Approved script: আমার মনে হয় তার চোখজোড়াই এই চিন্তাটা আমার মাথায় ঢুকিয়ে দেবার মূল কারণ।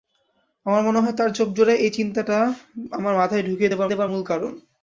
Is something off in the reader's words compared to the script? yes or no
yes